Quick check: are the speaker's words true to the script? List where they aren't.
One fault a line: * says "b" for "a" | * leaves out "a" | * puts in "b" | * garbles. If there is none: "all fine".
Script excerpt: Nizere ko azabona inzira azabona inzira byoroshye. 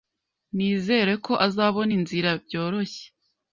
* leaves out "azabona inzira"